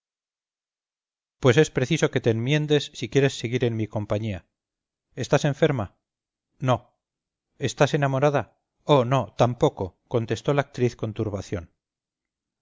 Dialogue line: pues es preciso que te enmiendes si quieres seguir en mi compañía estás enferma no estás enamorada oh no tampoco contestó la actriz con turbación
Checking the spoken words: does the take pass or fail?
pass